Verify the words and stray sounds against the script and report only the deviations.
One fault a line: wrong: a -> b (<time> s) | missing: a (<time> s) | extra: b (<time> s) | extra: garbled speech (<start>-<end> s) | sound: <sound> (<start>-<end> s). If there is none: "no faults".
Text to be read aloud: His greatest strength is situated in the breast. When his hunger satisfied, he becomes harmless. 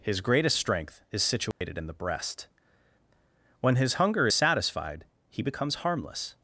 sound: dropout (1.5-1.6 s)